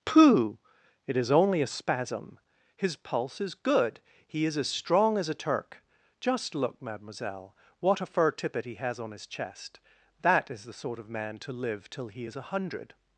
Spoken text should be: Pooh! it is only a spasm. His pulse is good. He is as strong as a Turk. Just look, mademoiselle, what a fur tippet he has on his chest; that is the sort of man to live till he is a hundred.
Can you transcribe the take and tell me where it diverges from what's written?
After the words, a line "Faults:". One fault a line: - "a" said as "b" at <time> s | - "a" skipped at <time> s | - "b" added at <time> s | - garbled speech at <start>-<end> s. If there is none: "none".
Pooh! it is only a spasm. His pulse is good. He is as strong as a Turk. Just look, mademoiselle, what a fur tippet he has on his chest; that is the sort of man to live till he is a hundred.
Faults:
none